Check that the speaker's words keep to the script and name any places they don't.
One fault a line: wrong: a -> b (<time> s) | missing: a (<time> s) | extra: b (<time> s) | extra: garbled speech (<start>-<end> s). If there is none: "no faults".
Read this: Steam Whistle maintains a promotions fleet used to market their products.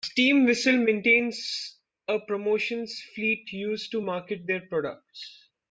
no faults